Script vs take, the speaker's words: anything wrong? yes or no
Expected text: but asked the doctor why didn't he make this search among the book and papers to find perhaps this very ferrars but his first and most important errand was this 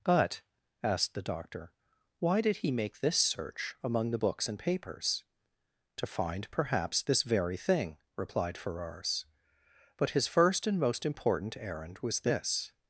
yes